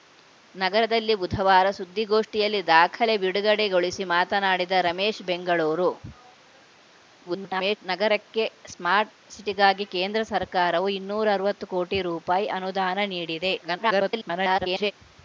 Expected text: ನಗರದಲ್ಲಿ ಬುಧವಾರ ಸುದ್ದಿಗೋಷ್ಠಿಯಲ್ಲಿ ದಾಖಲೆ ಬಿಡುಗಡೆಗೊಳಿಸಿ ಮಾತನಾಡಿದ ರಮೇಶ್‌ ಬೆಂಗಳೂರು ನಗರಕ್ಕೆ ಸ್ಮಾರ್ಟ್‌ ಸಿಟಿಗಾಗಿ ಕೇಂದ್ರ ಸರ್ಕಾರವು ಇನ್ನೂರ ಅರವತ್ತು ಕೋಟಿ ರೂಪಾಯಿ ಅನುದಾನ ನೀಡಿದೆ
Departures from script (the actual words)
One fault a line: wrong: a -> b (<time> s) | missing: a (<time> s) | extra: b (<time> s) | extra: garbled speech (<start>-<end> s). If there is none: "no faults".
extra: garbled speech (7.2-7.8 s)
extra: garbled speech (13.6-14.9 s)